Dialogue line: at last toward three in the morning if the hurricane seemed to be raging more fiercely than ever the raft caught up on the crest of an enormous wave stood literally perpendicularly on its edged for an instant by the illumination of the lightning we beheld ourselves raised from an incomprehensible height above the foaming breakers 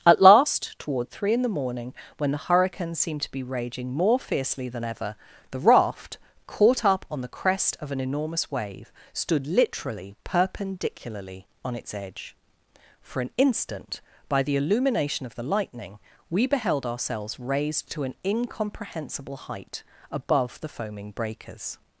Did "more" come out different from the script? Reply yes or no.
no